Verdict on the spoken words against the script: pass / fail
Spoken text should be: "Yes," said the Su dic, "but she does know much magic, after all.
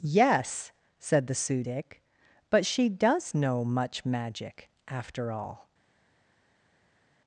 pass